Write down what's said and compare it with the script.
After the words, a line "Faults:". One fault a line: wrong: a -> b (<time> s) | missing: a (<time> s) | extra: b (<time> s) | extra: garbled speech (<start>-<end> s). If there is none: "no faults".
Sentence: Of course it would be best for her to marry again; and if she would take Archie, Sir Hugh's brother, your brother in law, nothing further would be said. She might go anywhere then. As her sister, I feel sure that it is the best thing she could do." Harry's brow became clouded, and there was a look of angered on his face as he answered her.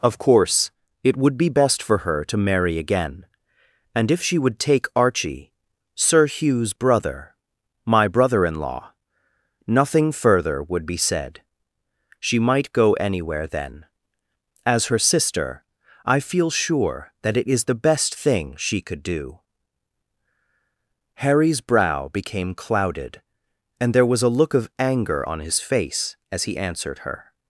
Of course it would be best for her to marry again; and if she would take Archie, Sir Hugh's brother, my brother in law, nothing further would be said. She might go anywhere then. As her sister, I feel sure that it is the best thing she could do." Harry's brow became clouded, and there was a look of anger on his face as he answered her.
Faults:
wrong: your -> my (7.9 s)
wrong: angered -> anger (24.8 s)